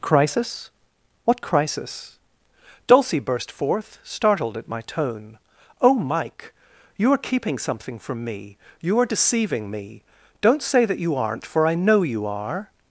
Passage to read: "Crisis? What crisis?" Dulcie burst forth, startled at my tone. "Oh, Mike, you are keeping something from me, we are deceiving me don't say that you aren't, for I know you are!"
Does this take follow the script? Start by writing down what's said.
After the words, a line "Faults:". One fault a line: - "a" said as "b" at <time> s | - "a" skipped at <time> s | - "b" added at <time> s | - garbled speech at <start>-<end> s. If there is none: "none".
"Crisis? What crisis?" Dulcie burst forth, startled at my tone. "Oh, Mike, you are keeping something from me, you are deceiving me don't say that you aren't, for I know you are!"
Faults:
- "we" said as "you" at 8.8 s